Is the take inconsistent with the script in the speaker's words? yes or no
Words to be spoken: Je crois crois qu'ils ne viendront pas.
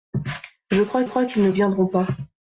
no